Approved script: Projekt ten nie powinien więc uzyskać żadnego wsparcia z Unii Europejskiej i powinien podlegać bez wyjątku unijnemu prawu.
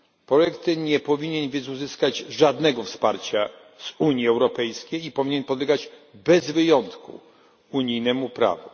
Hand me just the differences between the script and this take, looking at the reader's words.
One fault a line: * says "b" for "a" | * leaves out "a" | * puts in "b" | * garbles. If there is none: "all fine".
all fine